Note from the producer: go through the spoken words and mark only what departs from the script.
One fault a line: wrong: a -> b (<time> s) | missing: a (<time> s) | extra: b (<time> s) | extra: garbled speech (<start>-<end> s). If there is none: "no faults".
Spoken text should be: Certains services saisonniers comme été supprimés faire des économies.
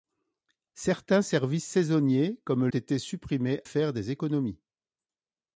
no faults